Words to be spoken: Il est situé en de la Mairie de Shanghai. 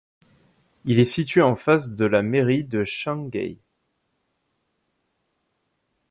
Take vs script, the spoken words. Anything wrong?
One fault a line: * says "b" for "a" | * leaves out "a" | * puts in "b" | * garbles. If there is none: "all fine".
* puts in "face"